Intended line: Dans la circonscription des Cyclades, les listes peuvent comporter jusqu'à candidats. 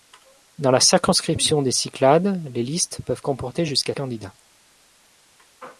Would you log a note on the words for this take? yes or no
no